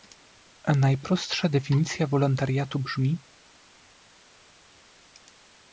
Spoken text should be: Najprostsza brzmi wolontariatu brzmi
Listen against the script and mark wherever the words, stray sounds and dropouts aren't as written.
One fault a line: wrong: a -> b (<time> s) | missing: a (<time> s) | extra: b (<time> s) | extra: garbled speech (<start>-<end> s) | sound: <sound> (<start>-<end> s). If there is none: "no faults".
wrong: brzmi -> definicja (1.5 s)